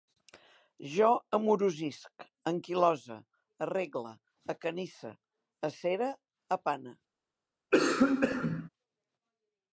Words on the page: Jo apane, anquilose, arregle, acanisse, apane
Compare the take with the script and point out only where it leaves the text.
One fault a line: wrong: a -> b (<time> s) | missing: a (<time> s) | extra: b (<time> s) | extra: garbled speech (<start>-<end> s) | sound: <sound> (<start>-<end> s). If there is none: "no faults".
wrong: apane -> amorosisc (1.4 s)
extra: acere (5.7 s)
sound: cough (7.7-8.7 s)